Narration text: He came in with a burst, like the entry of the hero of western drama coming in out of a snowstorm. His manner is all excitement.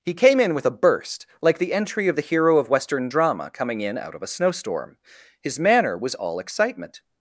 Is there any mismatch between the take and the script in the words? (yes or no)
yes